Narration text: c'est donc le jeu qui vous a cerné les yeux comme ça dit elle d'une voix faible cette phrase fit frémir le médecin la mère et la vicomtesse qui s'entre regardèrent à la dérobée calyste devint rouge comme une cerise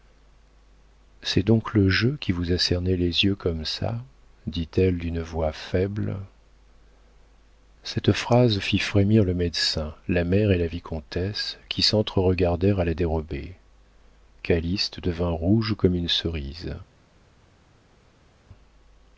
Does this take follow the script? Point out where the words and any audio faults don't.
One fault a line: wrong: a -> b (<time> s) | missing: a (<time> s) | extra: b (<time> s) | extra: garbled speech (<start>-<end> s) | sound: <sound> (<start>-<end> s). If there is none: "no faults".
no faults